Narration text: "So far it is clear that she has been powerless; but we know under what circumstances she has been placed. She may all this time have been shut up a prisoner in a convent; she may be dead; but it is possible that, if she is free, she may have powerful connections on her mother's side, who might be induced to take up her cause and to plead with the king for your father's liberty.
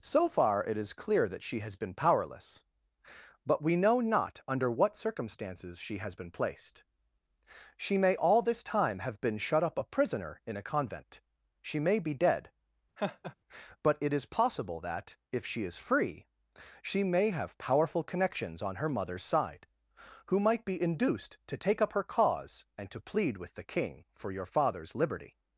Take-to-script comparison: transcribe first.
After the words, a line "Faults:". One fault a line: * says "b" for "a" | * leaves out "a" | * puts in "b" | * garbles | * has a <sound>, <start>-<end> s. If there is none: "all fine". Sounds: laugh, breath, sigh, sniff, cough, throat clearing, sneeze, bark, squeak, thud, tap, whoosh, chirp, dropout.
"So far it is clear that she has been powerless; but we know not under what circumstances she has been placed. She may all this time have been shut up a prisoner in a convent; she may be dead; but it is possible that, if she is free, she may have powerful connections on her mother's side, who might be induced to take up her cause and to plead with the king for your father's liberty.
Faults:
* puts in "not"
* has a laugh, 13.0-13.4 s